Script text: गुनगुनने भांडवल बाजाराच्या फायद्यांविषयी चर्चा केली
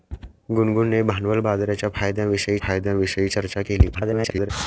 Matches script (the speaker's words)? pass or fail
fail